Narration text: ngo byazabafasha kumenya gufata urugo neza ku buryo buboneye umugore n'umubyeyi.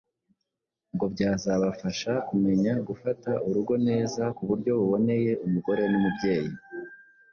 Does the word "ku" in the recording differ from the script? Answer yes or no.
no